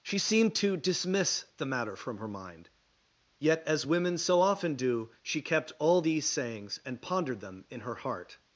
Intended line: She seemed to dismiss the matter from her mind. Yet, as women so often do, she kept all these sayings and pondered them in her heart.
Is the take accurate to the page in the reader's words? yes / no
yes